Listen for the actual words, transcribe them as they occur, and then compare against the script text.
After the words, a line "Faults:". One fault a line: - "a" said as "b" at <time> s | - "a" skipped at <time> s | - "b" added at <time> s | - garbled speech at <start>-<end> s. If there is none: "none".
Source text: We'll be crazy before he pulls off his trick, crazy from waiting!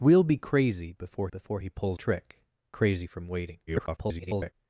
We'll be crazy before before he pulls trick, crazy from waiting! [garbled]
Faults:
- "before" added at 1.3 s
- "off his" skipped at 2.0 s
- garbled speech at 3.7-4.5 s